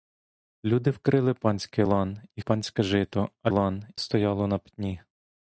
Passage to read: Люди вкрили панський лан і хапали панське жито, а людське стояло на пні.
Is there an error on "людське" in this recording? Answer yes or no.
yes